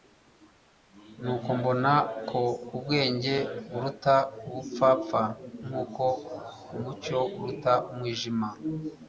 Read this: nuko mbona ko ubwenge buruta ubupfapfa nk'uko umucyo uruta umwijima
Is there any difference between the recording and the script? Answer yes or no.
no